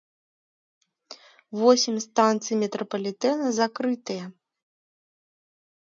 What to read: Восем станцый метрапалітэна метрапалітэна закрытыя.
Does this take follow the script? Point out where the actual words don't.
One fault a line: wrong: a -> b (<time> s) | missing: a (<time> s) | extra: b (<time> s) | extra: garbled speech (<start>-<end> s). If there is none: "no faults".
missing: метрапалітэна (3.5 s)